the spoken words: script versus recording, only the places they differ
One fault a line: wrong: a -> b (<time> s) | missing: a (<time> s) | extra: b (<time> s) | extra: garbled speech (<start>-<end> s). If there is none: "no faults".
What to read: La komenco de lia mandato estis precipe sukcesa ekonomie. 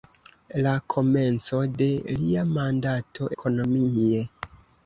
missing: estis precipe sukcesa (3.3 s)